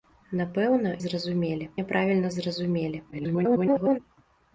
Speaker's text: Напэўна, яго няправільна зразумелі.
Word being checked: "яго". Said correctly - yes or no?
no